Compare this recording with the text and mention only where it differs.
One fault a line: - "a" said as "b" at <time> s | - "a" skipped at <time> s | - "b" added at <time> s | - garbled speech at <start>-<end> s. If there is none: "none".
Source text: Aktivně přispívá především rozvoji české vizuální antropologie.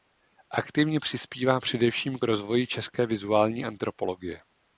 none